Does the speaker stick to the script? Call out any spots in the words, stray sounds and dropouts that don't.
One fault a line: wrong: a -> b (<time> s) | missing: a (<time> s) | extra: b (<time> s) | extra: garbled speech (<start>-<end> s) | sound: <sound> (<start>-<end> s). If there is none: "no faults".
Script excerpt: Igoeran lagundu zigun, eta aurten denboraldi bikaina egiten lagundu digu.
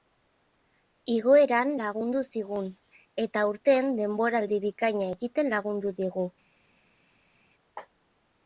no faults